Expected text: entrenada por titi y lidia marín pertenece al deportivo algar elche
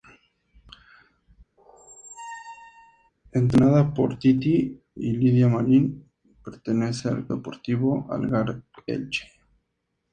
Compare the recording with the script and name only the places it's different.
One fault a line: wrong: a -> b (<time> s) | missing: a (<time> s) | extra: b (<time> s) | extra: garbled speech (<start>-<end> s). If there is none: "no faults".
no faults